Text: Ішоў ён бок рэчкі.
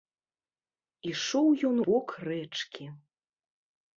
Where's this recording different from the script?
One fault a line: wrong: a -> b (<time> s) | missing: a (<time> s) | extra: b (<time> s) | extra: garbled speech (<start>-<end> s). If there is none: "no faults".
no faults